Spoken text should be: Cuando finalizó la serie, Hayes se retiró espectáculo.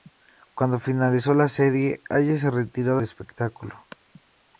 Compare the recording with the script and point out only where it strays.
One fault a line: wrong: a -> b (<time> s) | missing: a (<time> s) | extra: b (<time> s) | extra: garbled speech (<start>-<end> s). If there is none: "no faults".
no faults